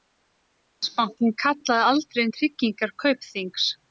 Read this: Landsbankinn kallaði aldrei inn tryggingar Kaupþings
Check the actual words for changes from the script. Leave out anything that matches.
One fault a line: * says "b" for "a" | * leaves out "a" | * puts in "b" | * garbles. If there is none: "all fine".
all fine